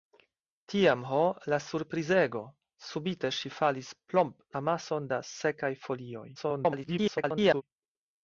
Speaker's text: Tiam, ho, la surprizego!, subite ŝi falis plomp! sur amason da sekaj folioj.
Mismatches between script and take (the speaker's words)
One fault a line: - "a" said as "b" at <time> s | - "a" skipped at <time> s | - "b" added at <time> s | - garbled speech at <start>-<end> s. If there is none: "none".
- "sur" skipped at 4.4 s
- garbled speech at 6.3-7.6 s